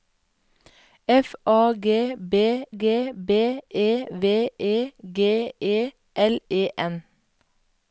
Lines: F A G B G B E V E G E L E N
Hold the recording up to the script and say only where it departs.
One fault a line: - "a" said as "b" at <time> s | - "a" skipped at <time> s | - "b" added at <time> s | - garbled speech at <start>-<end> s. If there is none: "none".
none